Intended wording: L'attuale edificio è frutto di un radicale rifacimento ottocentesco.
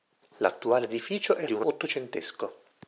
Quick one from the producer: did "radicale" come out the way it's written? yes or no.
no